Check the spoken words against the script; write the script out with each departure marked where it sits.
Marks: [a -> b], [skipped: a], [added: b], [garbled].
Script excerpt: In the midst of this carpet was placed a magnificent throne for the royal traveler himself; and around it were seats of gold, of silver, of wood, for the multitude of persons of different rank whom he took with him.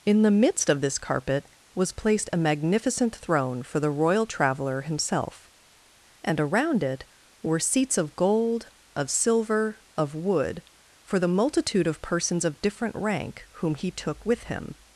In the midst of this carpet was placed a magnificent throne for the royal traveler himself; and around it were seats of gold, of silver, of wood, for the multitude of persons of different rank whom he took with him.